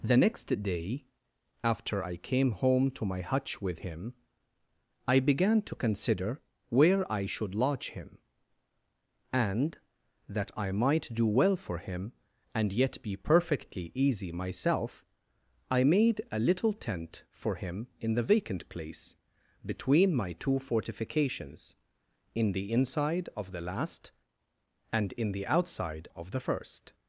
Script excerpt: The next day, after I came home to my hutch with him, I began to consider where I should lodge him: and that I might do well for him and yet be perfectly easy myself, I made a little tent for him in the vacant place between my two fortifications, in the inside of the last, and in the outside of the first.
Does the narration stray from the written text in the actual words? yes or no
no